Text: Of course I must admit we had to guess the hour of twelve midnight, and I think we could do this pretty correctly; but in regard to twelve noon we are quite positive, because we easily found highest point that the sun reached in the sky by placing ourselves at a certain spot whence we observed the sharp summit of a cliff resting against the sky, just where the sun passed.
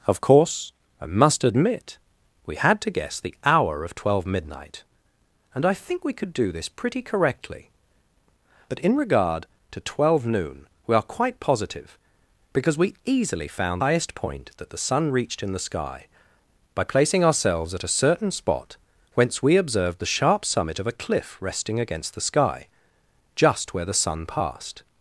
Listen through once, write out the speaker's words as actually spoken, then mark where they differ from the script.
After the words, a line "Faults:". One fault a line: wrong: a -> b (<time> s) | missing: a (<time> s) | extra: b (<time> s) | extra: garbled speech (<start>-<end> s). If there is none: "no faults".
Of course I must admit we had to guess the hour of twelve midnight, and I think we could do this pretty correctly; but in regard to twelve noon we are quite positive, because we easily found highest point that the sun reached in the sky by placing ourselves at a certain spot whence we observed the sharp summit of a cliff resting against the sky, just where the sun passed.
Faults:
no faults